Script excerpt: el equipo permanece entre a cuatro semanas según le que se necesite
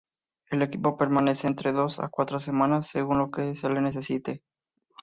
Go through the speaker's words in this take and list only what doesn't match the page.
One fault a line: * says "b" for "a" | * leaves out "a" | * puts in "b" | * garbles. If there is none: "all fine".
* puts in "dos"
* says "lo" for "le"
* puts in "le"